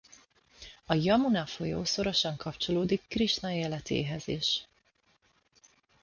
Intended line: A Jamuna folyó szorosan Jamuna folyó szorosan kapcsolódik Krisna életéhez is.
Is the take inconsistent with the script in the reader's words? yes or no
yes